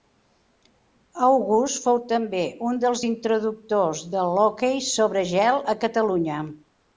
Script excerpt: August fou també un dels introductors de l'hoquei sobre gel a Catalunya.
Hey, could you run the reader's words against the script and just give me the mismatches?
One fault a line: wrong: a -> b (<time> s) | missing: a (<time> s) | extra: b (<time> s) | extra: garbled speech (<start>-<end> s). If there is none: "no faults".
no faults